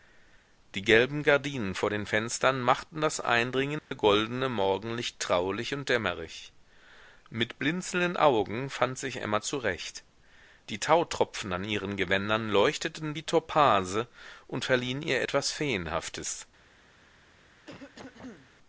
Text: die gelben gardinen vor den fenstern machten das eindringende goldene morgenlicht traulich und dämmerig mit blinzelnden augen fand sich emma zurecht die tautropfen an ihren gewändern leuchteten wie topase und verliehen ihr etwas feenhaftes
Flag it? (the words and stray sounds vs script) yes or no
yes